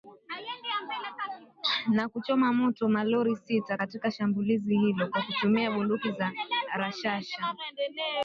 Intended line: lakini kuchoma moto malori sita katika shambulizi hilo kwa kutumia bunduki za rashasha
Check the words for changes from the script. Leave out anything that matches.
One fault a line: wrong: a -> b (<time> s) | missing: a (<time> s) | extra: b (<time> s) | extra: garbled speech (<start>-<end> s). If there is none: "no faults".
wrong: lakini -> na (1.9 s)